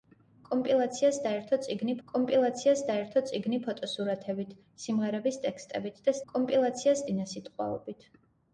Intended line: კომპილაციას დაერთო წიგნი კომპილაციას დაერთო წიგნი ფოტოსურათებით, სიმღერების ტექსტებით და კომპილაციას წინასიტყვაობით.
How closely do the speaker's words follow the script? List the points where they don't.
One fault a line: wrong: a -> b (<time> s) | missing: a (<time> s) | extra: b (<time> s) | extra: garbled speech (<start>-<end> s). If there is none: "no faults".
no faults